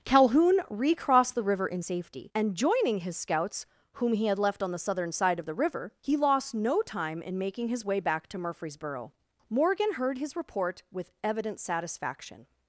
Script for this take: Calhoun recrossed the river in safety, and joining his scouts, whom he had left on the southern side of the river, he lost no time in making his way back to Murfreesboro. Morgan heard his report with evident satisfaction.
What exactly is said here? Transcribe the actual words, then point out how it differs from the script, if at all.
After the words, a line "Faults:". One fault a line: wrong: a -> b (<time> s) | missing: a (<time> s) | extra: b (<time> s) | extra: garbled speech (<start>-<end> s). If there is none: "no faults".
Calhoun recrossed the river in safety, and joining his scouts, whom he had left on the southern side of the river, he lost no time in making his way back to Murfreesboro. Morgan heard his report with evident satisfaction.
Faults:
no faults